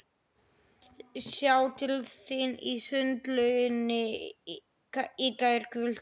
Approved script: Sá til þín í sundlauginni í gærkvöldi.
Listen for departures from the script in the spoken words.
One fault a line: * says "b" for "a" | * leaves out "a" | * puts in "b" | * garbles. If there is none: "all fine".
all fine